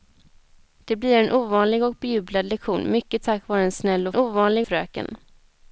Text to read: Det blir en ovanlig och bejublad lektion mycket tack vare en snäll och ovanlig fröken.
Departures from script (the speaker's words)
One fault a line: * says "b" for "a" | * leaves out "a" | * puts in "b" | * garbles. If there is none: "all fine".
all fine